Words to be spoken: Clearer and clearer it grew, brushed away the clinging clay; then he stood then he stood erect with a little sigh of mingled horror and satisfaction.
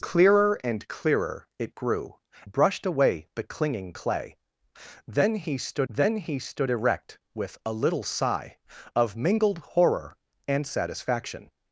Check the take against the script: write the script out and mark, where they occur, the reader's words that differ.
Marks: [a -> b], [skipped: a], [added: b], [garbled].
Clearer and clearer it grew, brushed away the clinging clay; then he stood then he stood erect with a little sigh of mingled horror and satisfaction.